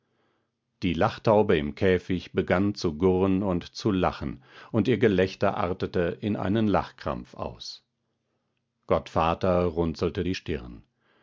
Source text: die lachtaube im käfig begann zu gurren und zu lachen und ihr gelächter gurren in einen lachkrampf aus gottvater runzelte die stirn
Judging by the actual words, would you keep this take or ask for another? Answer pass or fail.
fail